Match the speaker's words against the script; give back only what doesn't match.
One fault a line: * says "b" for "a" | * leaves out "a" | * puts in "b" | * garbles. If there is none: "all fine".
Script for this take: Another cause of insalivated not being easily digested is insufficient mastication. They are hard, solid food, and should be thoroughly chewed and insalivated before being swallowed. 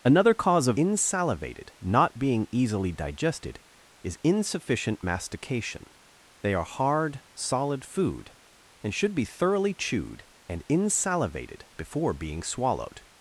all fine